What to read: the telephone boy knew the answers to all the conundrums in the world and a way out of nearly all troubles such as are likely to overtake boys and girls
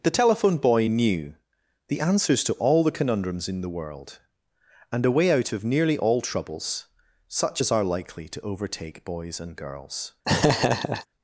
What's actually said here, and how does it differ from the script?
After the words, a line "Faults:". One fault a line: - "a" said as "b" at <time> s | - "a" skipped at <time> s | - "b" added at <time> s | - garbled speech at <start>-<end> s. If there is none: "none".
the telephone boy knew the answers to all the conundrums in the world and a way out of nearly all troubles such as are likely to overtake boys and girls
Faults:
none